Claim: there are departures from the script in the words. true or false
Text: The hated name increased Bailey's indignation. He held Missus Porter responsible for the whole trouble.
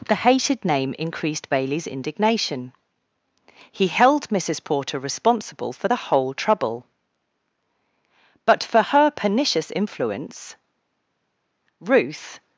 true